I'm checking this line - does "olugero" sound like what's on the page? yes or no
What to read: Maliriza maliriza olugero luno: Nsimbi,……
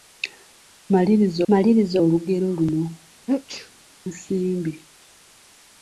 yes